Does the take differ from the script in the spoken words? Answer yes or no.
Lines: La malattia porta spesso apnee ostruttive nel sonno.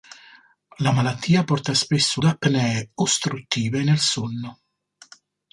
no